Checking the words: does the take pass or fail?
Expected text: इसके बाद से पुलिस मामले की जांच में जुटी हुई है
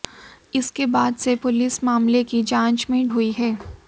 fail